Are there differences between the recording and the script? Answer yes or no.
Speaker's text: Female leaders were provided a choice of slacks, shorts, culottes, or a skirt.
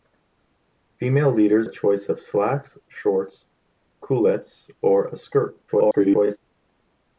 yes